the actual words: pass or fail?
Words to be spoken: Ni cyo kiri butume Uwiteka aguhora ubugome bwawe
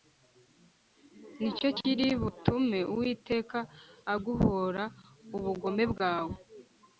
pass